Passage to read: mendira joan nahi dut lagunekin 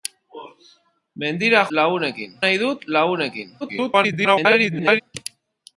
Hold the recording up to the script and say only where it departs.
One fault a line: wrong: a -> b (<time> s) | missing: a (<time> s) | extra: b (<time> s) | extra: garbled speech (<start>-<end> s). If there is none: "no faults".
wrong: joan -> lagunekin (1.8 s)
extra: garbled speech (3.6-5.0 s)